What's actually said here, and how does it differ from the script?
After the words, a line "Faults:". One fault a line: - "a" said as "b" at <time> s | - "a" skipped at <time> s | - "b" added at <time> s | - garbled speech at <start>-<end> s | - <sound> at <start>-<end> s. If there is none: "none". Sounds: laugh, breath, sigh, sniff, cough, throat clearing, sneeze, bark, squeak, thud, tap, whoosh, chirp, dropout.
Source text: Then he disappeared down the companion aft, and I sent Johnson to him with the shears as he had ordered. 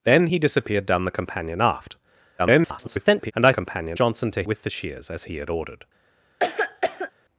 Then he disappeared down the companion aft, [garbled] and I companion Johnson to with the shears as he had ordered.
Faults:
- garbled speech at 2.4-3.3 s
- "sent" said as "companion" at 3.5 s
- "him" skipped at 4.4 s
- cough at 6.4-7.1 s